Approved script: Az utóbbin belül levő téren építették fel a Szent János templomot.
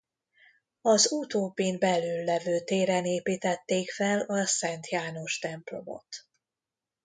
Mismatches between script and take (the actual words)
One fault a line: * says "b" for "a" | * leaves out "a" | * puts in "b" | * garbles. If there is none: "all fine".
all fine